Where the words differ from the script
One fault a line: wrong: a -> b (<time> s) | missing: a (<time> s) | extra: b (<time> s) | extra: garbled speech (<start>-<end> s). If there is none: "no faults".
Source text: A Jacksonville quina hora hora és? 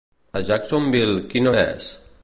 missing: hora (1.6 s)